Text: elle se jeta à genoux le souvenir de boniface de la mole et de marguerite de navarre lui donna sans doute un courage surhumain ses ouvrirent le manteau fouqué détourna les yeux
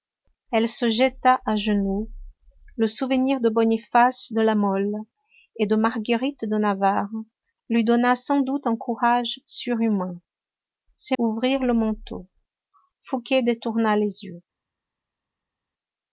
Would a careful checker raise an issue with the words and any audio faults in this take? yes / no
no